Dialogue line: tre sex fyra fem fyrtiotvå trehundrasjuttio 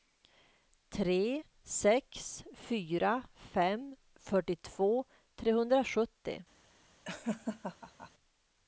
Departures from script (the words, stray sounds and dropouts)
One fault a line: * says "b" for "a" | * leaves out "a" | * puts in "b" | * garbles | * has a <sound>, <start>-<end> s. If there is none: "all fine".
* has a laugh, 7.1-8.1 s